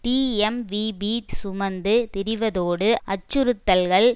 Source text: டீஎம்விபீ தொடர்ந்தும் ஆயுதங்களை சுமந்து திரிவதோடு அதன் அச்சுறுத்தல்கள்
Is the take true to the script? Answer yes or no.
no